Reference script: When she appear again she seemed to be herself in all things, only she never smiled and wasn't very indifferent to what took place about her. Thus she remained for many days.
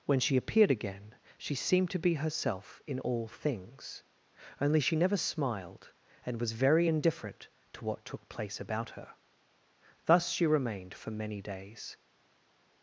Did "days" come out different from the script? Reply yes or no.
no